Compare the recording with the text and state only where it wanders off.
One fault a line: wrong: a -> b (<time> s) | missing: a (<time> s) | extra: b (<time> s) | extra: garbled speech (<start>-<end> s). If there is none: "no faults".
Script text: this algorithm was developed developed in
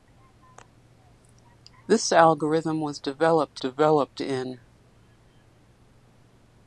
no faults